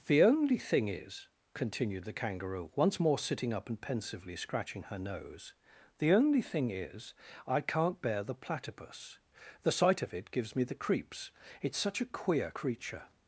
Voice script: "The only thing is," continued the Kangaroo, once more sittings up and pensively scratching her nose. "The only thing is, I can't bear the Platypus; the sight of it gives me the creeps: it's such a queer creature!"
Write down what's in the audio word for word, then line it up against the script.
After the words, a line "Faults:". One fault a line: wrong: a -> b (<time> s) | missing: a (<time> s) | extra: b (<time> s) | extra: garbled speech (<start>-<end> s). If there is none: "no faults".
"The only thing is," continued the Kangaroo, once more sitting up and pensively scratching her nose. "The only thing is, I can't bear the Platypus; the sight of it gives me the creeps: it's such a queer creature!"
Faults:
wrong: sittings -> sitting (3.2 s)